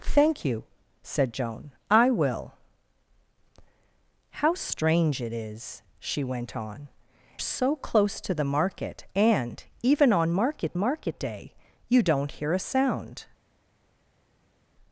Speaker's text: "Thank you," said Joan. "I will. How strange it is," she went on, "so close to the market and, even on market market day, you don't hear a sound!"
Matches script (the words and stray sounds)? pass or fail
pass